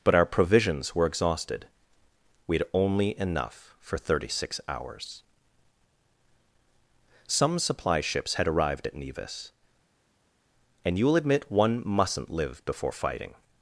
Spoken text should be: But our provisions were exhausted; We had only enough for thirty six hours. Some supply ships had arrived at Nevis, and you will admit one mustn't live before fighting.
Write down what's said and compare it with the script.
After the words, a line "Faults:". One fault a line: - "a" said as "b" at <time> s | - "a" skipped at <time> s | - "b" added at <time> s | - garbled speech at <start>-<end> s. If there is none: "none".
But our provisions were exhausted; We had only enough for thirty six hours. Some supply ships had arrived at Nevis, and you will admit one mustn't live before fighting.
Faults:
none